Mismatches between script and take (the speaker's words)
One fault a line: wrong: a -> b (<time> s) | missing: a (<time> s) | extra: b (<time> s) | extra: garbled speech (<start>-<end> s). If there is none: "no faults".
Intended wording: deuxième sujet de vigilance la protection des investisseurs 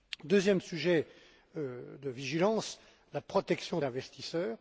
missing: des (3.8 s)